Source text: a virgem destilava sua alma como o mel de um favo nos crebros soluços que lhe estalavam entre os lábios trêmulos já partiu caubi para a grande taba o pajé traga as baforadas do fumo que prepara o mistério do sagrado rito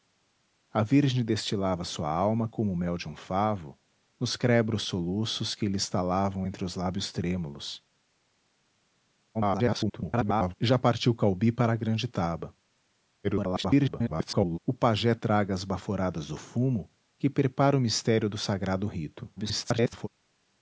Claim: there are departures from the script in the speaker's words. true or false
true